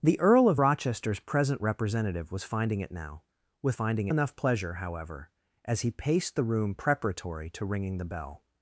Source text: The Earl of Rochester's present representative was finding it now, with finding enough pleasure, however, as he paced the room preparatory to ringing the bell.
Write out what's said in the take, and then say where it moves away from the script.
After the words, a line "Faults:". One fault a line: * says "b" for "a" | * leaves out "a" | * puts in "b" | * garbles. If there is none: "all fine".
The Earl of Rochester's present representative was finding it now, with finding enough pleasure, however, as he paced the room preparatory to ringing the bell.
Faults:
all fine